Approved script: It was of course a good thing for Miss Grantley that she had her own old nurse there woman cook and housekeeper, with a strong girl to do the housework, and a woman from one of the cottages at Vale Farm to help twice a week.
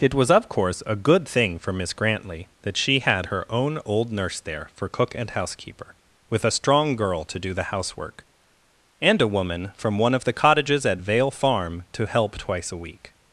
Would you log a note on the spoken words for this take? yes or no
yes